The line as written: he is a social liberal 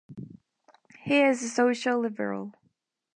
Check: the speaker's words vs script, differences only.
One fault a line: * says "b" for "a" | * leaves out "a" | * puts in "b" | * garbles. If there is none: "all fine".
all fine